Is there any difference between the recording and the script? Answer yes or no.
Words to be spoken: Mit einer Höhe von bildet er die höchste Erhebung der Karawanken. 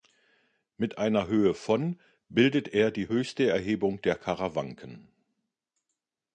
no